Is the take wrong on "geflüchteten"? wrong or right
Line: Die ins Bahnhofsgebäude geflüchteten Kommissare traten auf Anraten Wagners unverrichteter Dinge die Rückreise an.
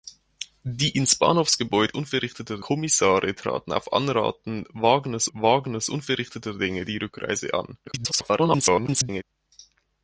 wrong